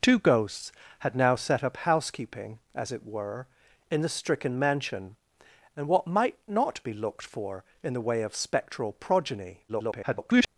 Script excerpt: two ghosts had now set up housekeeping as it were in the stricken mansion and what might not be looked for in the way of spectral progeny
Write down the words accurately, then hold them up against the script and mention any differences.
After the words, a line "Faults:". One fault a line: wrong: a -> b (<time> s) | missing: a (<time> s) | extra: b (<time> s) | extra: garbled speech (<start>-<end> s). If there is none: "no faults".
two ghosts had now set up housekeeping as it were in the stricken mansion and what might not be looked for in the way of spectral progeny [garbled]
Faults:
extra: garbled speech (9.7-10.5 s)